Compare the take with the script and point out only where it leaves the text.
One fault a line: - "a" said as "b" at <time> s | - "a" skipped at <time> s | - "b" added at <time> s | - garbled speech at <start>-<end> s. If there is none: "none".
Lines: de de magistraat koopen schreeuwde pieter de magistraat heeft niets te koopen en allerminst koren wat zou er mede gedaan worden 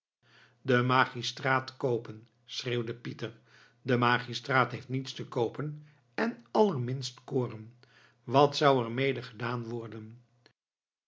- "de" skipped at 0.8 s